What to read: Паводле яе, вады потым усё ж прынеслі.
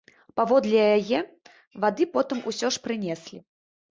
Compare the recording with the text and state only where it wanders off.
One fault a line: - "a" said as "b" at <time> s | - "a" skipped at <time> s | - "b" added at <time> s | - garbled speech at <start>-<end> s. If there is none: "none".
none